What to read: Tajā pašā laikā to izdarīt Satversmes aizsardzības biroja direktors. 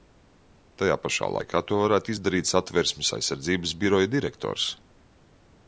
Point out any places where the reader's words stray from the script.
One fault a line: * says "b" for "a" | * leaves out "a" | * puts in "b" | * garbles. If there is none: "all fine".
* puts in "varētu"